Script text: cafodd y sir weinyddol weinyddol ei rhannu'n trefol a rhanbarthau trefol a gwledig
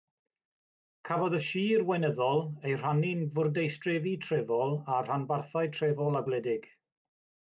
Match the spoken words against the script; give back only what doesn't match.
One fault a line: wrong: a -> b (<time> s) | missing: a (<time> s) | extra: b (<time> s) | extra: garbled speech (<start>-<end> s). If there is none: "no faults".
missing: weinyddol (2.4 s)
extra: fwrdeistrefi (3.4 s)